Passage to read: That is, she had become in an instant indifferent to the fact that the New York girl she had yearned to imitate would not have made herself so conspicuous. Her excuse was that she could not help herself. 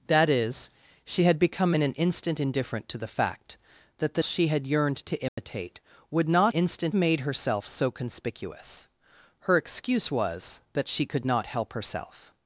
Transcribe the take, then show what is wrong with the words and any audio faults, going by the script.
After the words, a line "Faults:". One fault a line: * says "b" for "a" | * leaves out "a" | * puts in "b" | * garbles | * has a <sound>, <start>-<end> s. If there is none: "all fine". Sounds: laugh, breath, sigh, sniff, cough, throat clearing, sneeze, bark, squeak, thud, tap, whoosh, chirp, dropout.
That is, she had become in an instant indifferent to the fact that the She had yearned to imitate would not instant made herself so conspicuous. Her excuse was that she could not help herself.
Faults:
* leaves out "New York girl"
* has a dropout, 5.3-5.4 s
* says "instant" for "have"